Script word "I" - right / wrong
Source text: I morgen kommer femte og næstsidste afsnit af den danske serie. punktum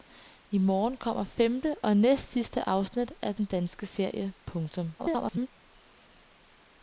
right